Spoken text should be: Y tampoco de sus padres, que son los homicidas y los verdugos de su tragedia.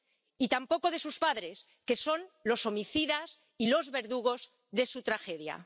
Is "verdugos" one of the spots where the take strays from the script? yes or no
no